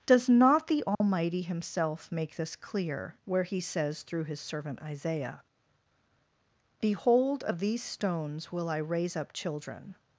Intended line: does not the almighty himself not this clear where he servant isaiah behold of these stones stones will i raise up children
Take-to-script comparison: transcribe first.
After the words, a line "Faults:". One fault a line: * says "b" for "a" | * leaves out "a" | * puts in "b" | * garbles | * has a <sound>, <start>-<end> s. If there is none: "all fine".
does not the almighty himself make this clear where he says through his servant isaiah behold of these stones will i raise up children
Faults:
* has a dropout, 0.9-1.0 s
* says "make" for "not"
* puts in "says through his"
* leaves out "stones"